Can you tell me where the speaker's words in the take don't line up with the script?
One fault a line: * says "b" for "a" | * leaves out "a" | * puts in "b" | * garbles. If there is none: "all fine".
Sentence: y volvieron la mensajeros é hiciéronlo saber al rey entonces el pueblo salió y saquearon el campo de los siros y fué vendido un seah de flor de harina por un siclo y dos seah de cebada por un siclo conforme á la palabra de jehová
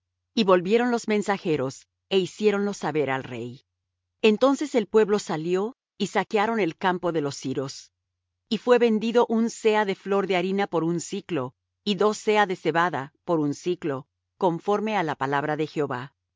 * says "los" for "la"